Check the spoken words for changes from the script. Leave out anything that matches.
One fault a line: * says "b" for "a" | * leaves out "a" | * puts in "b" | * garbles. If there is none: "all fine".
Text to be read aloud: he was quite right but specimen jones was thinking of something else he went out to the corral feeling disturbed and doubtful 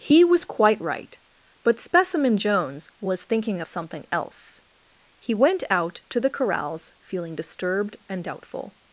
* says "corrals" for "corral"